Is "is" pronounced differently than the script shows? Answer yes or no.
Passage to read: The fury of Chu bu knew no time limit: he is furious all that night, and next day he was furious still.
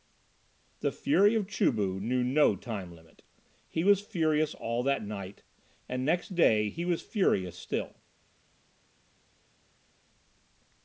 yes